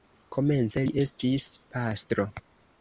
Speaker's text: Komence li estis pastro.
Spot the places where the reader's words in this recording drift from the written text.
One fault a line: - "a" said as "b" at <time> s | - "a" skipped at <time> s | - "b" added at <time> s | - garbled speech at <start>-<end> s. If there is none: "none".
none